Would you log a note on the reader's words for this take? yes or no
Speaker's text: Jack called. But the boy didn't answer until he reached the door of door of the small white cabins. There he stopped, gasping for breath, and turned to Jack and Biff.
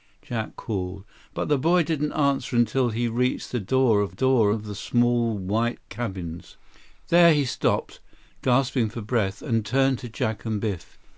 no